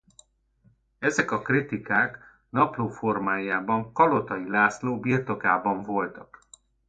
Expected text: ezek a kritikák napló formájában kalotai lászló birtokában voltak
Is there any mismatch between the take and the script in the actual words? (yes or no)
no